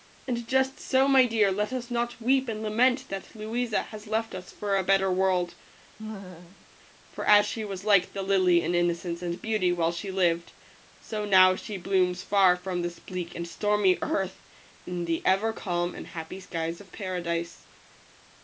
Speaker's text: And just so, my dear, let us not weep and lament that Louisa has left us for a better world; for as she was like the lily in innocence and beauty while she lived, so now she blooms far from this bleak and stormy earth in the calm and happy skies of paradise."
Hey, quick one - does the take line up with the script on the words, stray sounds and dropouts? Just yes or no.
no